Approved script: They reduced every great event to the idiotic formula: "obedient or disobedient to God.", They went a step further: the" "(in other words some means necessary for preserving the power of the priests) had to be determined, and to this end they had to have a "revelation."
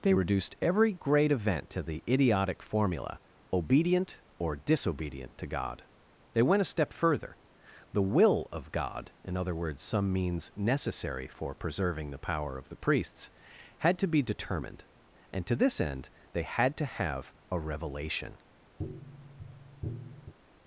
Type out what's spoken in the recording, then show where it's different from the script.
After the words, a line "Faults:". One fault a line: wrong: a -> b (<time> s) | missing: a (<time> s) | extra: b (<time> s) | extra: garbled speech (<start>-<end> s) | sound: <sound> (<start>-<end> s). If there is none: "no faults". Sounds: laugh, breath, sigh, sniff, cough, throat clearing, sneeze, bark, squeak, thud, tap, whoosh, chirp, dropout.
They reduced every great event to the idiotic formula: "obedient or disobedient to God.", They went a step further: the "will of God" (in other words some means necessary for preserving the power of the priests) had to be determined, and to this end they had to have a "revelation."
Faults:
extra: will of God (8.0 s)
sound: tap (18.8-20.3 s)